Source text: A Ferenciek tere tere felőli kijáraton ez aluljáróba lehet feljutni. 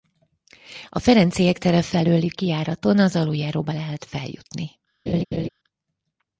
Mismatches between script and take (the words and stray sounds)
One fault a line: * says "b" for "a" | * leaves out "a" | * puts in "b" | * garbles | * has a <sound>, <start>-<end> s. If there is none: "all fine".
* leaves out "tere"
* says "az" for "ez"
* has a laugh, 5.1-5.5 s